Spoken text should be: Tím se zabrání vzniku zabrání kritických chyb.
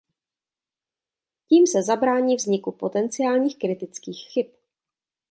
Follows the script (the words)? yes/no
no